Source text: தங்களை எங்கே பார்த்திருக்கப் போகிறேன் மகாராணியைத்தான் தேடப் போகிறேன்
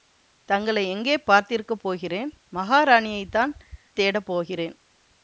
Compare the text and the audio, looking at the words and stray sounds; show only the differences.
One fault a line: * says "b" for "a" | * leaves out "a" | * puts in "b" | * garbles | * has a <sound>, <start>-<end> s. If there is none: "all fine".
all fine